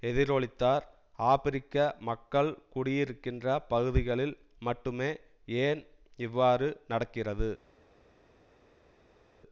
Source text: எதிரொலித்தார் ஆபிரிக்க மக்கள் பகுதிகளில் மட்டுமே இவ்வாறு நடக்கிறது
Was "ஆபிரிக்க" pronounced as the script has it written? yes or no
yes